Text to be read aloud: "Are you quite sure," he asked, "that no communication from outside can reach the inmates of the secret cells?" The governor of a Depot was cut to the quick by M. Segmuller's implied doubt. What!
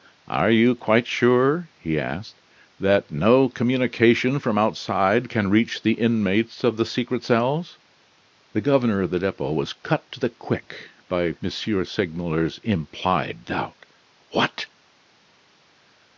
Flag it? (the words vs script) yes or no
yes